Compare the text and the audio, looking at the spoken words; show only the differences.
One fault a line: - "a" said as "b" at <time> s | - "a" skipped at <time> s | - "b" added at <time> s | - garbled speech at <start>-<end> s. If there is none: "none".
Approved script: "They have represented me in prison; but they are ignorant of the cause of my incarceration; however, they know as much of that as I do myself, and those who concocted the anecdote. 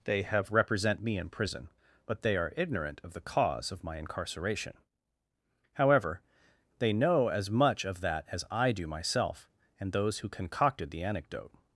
- "represented" said as "represent" at 0.5 s